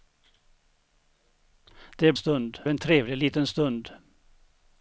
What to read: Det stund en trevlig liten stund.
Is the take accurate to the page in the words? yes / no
yes